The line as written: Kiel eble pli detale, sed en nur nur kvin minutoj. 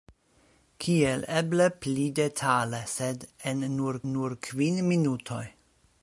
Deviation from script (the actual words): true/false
false